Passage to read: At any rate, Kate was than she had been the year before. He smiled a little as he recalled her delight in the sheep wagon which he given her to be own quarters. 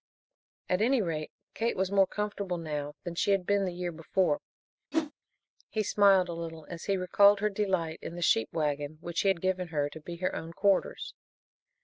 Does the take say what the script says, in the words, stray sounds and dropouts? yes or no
no